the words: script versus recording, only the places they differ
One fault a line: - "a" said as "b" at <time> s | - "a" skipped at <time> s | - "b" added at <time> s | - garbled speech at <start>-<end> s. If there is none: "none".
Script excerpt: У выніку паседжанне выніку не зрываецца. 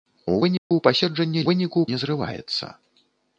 none